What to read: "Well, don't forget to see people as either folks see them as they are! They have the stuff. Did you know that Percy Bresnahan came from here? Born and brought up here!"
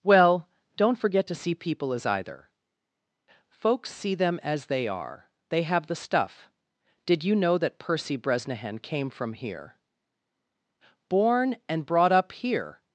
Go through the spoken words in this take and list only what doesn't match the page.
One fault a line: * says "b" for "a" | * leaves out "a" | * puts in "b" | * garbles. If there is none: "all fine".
all fine